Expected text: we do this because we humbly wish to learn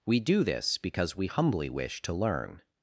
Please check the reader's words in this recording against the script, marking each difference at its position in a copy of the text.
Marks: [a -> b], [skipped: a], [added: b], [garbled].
we do this because we humbly wish to learn